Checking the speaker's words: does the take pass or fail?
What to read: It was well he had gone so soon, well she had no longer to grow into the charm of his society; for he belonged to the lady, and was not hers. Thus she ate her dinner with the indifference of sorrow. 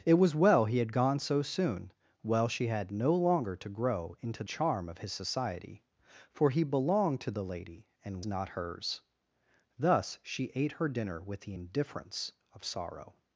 fail